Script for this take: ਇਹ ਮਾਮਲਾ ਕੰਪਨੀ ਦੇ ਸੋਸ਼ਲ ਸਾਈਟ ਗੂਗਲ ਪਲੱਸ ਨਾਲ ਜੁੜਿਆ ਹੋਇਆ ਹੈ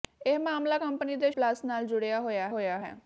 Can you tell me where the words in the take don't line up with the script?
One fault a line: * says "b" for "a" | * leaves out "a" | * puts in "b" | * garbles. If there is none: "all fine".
* leaves out "ਸੋਸ਼ਲ ਸਾਈਟ ਗੂਗਲ"
* puts in "ਹੋਇਆ"